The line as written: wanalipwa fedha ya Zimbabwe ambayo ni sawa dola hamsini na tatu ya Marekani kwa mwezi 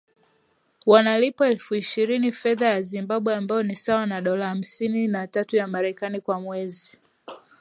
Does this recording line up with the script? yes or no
no